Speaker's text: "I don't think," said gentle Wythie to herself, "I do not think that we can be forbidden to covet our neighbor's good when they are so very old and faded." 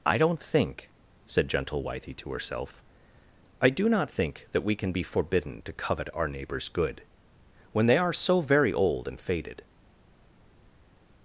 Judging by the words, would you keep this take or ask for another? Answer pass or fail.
pass